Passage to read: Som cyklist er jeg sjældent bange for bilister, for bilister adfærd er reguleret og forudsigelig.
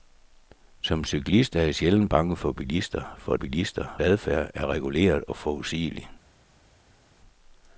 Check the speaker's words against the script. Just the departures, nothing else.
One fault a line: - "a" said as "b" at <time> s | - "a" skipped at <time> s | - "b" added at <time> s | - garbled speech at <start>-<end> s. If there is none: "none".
none